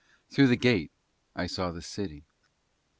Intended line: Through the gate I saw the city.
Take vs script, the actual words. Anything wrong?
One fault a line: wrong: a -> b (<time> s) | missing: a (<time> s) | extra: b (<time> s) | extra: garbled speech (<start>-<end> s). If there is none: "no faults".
no faults